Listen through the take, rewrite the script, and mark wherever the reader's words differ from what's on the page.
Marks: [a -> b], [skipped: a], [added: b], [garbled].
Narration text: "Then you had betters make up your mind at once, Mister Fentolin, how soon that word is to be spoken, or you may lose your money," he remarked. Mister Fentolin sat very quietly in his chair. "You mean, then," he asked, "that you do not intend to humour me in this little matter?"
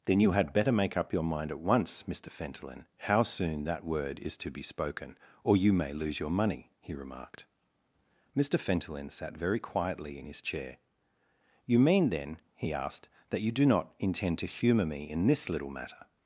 "Then you had [betters -> better] make up your mind at once, Mister Fentolin, how soon that word is to be spoken, or you may lose your money," he remarked. Mister Fentolin sat very quietly in his chair. "You mean, then," he asked, "that you do not intend to humour me in this little matter?"